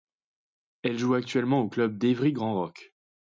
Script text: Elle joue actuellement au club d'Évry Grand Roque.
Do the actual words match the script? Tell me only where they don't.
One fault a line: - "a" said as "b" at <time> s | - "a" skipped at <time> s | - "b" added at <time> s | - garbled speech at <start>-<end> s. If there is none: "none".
none